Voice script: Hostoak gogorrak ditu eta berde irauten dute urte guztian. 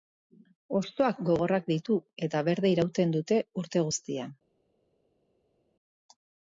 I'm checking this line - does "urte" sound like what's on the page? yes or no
yes